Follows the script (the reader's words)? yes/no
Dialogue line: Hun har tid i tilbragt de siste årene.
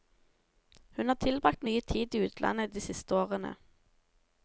no